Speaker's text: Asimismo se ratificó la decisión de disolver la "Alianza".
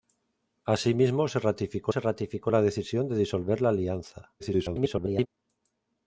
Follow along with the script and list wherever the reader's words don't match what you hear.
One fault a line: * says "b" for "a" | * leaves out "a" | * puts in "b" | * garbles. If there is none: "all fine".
* puts in "se ratificó"
* garbles